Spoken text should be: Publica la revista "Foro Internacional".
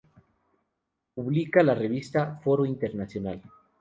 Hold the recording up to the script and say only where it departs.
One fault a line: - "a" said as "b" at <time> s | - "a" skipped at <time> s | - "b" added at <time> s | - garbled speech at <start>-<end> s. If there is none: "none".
none